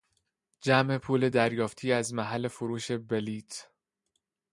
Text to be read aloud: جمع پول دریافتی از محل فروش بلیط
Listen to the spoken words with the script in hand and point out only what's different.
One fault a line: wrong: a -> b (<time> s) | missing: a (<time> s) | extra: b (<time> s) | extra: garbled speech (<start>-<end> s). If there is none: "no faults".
no faults